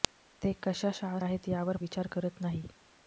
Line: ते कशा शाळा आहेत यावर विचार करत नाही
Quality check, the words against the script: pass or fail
pass